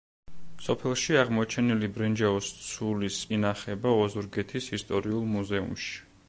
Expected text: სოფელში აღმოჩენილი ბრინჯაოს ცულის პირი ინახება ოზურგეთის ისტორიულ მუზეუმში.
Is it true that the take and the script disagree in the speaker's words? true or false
true